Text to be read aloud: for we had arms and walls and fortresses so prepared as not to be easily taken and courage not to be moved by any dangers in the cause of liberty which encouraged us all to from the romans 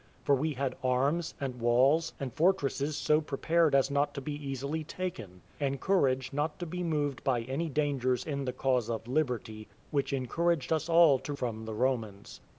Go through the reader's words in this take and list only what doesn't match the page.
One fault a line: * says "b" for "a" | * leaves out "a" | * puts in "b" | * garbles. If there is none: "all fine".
all fine